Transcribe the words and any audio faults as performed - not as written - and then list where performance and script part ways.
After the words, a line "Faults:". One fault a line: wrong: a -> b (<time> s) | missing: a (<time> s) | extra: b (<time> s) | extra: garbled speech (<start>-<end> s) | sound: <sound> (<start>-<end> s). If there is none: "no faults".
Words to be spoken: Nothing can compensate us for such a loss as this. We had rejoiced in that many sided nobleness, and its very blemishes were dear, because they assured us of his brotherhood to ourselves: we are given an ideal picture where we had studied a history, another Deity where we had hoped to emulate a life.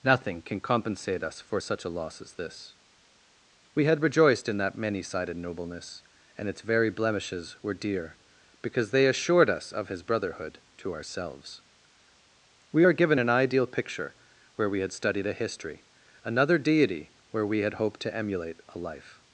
Nothing can compensate us for such a loss as this. We had rejoiced in that many sided nobleness, and its very blemishes were dear, because they assured us of his brotherhood to ourselves: we are given an ideal picture where we had studied a history, another Deity where we had hoped to emulate a life.
Faults:
no faults